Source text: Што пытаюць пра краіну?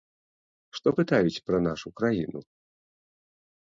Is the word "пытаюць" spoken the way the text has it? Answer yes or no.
yes